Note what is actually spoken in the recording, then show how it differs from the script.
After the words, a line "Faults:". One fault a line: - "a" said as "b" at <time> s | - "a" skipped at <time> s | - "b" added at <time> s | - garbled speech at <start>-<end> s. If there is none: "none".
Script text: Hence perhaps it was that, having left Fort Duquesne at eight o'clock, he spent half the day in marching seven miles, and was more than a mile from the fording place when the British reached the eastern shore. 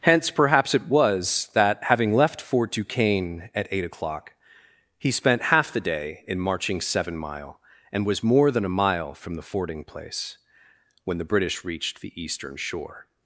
Hence perhaps it was that, having left Fort Duquesne at eight o'clock, he spent half the day in marching seven mile, and was more than a mile from the fording place when the British reached the eastern shore.
Faults:
- "miles" said as "mile" at 7.2 s